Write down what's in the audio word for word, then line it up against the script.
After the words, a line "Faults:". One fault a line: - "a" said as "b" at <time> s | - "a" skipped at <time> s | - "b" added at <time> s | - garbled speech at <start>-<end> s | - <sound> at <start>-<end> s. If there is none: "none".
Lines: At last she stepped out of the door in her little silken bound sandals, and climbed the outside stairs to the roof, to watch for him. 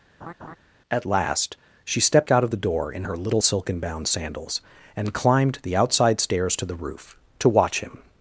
At last she stepped out of the door in her little silken bound sandals, and climbed the outside stairs to the roof, to watch him.
Faults:
- laugh at 0.2-0.6 s
- "for" skipped at 7.8 s